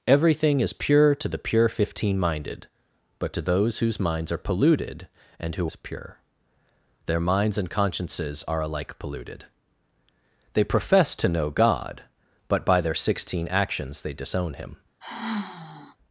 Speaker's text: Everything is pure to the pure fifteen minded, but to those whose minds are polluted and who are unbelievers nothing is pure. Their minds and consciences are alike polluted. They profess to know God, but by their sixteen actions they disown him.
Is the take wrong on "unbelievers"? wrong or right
wrong